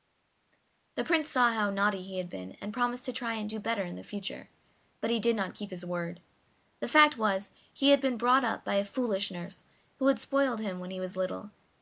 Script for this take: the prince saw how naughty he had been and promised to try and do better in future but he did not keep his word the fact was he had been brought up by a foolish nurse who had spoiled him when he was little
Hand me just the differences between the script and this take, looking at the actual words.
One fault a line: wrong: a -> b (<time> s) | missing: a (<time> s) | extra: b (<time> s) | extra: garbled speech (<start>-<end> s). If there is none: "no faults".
no faults